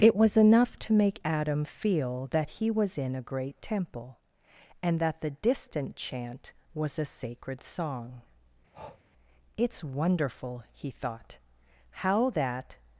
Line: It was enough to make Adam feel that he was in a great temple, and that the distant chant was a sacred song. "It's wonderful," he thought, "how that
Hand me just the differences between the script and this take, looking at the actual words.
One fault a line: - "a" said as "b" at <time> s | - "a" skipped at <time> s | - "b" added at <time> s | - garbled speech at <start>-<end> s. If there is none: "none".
none